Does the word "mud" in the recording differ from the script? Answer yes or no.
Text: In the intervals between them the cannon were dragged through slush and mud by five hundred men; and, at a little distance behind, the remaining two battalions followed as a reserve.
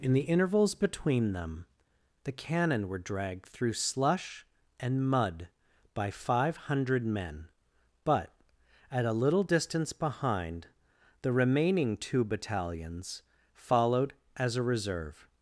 no